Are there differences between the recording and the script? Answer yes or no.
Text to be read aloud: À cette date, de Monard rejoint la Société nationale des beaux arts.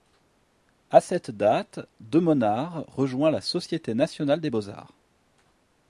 no